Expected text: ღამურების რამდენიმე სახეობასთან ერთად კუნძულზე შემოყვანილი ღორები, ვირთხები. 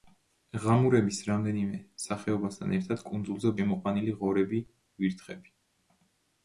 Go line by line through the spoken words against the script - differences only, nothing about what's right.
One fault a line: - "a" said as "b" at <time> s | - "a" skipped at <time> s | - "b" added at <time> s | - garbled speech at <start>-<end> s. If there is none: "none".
none